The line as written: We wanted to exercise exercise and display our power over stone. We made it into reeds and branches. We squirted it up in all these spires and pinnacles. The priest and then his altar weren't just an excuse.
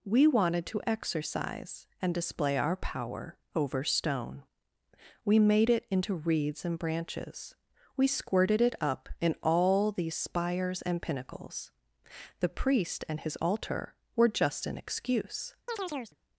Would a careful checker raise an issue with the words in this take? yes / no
yes